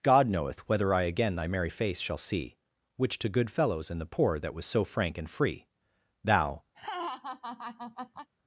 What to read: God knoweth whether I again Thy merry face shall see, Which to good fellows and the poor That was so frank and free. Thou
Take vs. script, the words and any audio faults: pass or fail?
fail